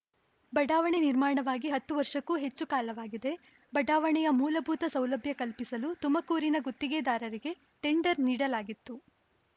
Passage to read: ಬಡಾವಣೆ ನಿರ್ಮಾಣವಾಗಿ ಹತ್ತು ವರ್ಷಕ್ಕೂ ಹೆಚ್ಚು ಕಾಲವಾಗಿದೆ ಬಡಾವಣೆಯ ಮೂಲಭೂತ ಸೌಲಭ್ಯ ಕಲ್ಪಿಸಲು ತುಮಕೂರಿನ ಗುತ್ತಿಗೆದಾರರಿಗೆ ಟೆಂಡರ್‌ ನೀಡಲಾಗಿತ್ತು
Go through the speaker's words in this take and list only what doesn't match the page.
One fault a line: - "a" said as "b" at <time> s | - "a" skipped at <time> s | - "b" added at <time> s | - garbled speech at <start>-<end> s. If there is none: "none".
none